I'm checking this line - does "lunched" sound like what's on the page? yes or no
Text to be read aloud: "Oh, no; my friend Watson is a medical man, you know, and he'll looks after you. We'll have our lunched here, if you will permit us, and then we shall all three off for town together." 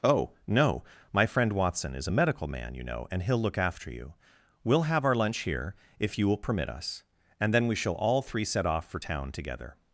no